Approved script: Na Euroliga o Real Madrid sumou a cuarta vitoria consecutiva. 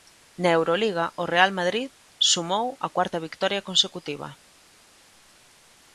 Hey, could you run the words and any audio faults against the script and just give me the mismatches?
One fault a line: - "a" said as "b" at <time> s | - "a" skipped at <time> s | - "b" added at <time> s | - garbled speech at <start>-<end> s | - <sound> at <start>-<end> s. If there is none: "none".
none